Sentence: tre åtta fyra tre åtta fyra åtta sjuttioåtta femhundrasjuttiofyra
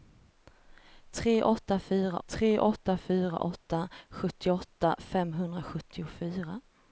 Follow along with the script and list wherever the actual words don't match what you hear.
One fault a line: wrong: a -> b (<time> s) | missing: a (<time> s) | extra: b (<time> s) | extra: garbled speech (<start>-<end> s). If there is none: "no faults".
no faults